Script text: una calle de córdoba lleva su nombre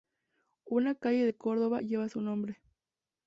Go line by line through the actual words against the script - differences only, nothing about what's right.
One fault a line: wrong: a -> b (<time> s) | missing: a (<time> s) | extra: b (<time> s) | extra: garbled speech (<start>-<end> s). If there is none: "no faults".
no faults